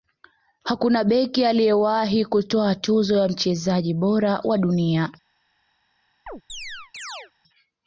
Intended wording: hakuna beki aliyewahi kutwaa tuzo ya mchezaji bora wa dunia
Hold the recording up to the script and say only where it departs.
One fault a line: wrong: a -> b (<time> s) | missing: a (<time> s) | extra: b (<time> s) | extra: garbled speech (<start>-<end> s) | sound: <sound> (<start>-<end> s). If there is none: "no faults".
sound: chirp (6.3-7.3 s)